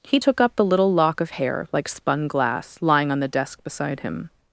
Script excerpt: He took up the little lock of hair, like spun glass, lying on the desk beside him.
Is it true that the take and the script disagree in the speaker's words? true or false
false